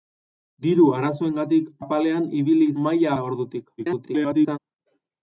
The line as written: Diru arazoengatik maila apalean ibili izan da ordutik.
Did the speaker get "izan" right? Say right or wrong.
wrong